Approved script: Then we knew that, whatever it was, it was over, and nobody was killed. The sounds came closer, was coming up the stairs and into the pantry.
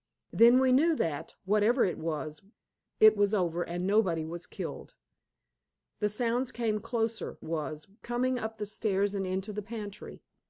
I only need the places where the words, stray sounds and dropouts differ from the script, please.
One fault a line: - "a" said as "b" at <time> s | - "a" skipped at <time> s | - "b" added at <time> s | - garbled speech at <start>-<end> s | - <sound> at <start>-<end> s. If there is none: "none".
none